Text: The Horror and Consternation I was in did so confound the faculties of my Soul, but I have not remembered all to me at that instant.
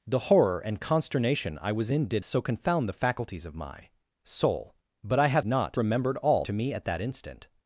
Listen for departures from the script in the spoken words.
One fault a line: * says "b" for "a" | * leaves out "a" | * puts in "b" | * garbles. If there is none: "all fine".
all fine